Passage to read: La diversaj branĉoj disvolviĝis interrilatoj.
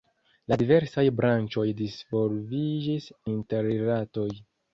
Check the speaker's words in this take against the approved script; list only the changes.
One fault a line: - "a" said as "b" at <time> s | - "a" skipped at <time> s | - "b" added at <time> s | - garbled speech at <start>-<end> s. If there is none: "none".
none